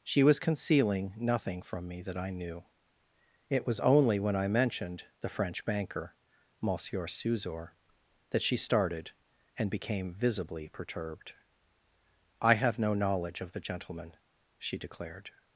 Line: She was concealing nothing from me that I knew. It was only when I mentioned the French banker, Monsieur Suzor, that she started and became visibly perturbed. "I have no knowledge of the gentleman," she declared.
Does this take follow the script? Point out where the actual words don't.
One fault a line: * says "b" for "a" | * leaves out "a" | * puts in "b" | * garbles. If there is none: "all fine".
all fine